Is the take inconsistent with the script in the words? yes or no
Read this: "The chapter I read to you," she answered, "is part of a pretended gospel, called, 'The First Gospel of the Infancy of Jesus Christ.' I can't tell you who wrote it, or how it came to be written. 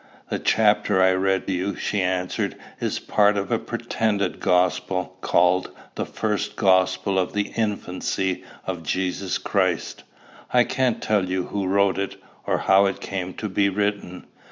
yes